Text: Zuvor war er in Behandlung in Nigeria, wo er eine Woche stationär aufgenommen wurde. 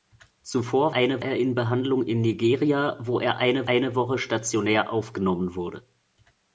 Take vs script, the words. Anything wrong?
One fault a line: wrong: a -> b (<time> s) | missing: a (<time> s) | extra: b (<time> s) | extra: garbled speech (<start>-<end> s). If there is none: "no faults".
wrong: war -> eine (0.9 s)
extra: eine (3.7 s)